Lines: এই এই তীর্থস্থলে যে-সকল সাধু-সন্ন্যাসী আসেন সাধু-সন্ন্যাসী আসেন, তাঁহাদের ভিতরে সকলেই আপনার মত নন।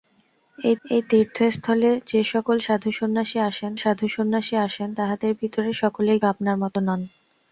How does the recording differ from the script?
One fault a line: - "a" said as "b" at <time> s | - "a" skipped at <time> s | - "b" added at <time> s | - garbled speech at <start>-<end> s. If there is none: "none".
none